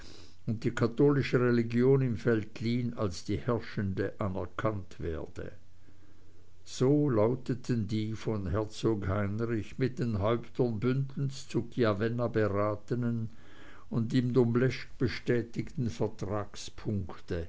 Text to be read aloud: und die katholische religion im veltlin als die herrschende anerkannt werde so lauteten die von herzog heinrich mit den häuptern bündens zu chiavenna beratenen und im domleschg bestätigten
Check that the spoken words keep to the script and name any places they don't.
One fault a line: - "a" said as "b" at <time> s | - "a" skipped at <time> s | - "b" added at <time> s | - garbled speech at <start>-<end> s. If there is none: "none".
none